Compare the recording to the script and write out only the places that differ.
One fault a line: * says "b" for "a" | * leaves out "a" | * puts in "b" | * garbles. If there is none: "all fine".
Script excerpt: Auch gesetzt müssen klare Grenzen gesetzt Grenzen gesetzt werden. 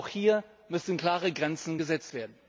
* says "hier" for "gesetzt"
* leaves out "Grenzen gesetzt"